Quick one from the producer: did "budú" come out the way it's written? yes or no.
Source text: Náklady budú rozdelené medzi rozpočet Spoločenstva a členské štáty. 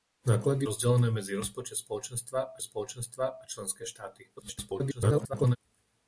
no